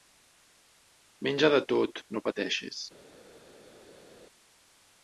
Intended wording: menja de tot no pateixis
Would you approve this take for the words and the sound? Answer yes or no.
yes